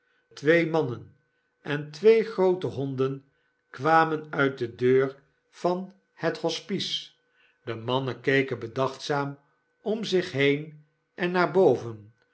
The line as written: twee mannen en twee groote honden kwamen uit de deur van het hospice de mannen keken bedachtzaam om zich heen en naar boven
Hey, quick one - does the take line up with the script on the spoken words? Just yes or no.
yes